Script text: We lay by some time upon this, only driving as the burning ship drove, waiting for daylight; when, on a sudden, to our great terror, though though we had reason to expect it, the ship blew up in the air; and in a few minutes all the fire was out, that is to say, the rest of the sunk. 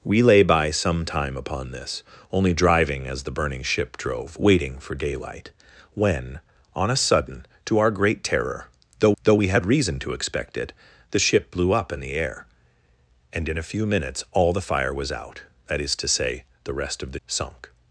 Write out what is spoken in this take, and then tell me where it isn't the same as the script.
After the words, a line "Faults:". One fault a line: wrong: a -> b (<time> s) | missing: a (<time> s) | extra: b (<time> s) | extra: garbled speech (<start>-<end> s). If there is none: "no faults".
We lay by some time upon this, only driving as the burning ship drove, waiting for daylight; when, on a sudden, to our great terror, though though we had reason to expect it, the ship blew up in the air; and in a few minutes all the fire was out, that is to say, the rest of the sunk.
Faults:
no faults